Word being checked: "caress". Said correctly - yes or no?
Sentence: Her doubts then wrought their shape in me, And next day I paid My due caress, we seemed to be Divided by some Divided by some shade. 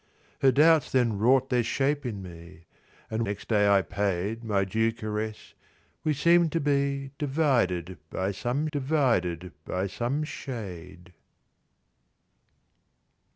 yes